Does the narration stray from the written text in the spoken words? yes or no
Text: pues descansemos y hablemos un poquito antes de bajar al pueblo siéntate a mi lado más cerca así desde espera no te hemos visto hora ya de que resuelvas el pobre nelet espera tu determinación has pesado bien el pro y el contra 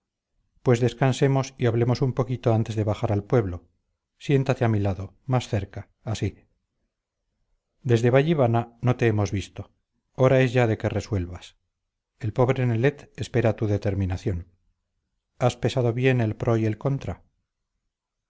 yes